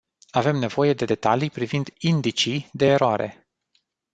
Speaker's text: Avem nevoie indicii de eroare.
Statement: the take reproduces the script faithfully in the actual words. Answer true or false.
false